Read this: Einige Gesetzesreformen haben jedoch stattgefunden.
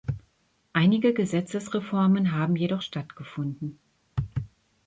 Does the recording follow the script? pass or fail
pass